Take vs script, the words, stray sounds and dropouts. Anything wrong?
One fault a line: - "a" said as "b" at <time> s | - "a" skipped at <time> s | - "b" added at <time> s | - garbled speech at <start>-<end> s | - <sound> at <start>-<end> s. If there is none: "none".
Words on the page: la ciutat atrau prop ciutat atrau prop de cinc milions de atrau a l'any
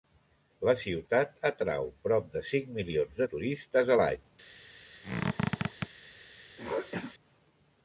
- "ciutat atrau prop" skipped at 2.3 s
- "atrau" said as "turistes" at 3.4 s
- squeak at 5.0-5.9 s
- throat clearing at 6.6-7.1 s